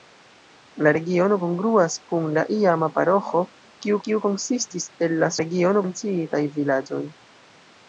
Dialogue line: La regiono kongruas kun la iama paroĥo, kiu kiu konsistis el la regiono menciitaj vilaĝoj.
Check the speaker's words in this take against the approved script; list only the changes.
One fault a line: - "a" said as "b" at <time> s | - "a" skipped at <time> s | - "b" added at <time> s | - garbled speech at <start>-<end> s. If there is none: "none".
none